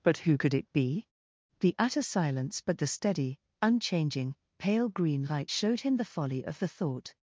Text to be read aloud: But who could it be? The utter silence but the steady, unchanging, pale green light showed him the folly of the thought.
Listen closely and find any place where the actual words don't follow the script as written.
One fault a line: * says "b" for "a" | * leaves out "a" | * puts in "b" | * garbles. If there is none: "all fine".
all fine